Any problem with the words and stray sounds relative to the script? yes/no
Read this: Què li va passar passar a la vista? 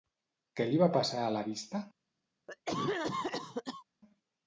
yes